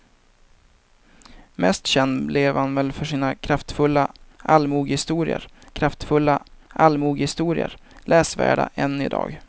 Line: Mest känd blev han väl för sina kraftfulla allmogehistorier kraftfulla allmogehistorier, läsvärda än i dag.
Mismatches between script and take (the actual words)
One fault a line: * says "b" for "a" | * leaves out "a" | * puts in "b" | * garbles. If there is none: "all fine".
all fine